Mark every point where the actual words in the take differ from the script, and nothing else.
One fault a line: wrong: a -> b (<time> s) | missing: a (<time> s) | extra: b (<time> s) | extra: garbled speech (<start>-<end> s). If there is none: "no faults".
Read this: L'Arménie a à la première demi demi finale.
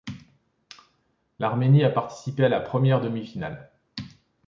extra: participé (1.9 s)
missing: demi (3.2 s)